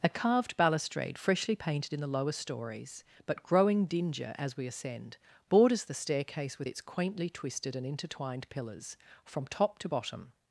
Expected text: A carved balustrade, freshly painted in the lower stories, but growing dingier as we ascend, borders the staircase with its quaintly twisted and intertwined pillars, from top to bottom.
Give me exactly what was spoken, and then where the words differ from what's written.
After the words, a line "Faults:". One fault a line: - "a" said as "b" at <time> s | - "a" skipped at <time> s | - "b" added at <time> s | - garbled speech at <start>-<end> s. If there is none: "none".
A carved balustrade, freshly painted in the lower stories, but growing dingier as we ascend, borders the staircase with its quaintly twisted and intertwined pillars, from top to bottom.
Faults:
none